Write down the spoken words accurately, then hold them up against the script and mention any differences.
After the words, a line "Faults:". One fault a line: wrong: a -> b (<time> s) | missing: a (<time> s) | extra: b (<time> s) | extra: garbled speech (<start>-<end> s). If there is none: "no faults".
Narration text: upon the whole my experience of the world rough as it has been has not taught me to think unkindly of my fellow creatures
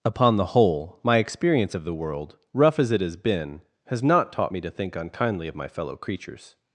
upon the whole my experience of the world rough as it has been has not taught me to think unkindly of my fellow creatures
Faults:
no faults